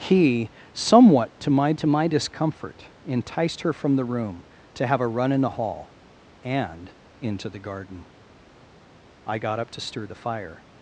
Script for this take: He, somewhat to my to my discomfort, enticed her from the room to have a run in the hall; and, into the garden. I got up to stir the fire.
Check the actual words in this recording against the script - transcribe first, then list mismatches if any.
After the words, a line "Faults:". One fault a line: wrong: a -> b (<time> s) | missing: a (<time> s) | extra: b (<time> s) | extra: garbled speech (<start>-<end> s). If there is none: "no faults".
He, somewhat to my to my discomfort, enticed her from the room to have a run in the hall; and, into the garden. I got up to stir the fire.
Faults:
no faults